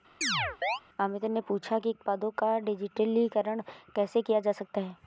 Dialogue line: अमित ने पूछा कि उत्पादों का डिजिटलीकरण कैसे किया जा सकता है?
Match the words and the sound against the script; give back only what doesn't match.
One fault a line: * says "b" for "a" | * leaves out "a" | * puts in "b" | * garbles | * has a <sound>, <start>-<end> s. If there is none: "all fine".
* has a chirp, 0.2-0.8 s